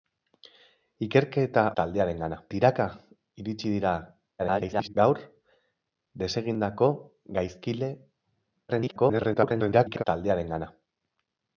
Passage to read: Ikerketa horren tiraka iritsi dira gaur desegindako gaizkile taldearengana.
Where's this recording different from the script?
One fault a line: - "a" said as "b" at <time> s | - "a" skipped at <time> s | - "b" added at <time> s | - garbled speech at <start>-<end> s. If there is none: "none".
- "horren" said as "taldearengana" at 1.8 s
- garbled speech at 4.4-4.9 s
- garbled speech at 8.7-10.0 s